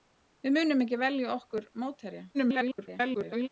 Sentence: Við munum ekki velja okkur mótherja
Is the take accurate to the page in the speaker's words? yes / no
no